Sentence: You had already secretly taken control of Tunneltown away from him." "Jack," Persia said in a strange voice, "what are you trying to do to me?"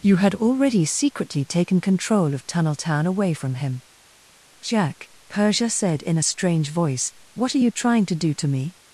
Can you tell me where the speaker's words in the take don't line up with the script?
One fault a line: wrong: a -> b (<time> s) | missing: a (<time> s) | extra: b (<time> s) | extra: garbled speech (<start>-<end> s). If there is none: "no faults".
no faults